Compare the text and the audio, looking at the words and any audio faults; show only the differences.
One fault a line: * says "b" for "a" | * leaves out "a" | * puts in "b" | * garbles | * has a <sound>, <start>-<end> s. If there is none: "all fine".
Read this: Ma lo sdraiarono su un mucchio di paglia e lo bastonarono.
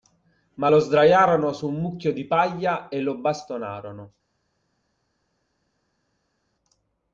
all fine